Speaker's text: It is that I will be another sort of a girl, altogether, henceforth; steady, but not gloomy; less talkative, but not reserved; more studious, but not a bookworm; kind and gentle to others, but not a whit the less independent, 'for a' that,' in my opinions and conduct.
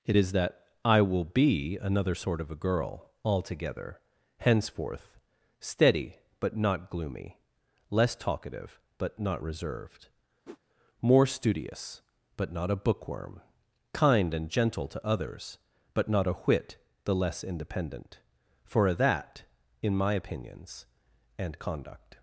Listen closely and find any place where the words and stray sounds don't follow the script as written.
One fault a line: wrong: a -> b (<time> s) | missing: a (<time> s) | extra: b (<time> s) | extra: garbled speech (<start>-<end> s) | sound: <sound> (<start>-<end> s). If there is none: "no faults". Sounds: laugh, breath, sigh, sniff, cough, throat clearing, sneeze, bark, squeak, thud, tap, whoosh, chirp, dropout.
sound: whoosh (10.5-10.6 s)
missing: a (18.9 s)